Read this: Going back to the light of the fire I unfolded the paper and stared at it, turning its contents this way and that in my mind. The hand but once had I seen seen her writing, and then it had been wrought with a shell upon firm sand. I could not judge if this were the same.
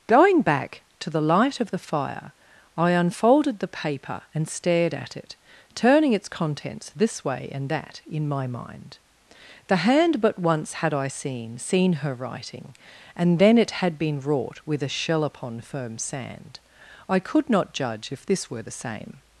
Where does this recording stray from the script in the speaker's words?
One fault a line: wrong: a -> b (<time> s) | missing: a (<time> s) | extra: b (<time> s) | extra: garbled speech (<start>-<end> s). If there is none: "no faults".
no faults